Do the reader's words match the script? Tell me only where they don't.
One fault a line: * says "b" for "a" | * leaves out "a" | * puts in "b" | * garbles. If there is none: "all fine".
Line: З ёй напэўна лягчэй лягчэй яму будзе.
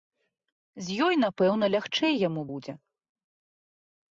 * leaves out "лягчэй"